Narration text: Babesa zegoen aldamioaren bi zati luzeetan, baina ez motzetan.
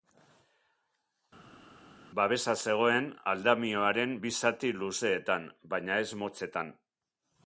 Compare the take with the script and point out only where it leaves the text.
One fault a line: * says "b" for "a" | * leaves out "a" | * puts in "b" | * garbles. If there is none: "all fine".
all fine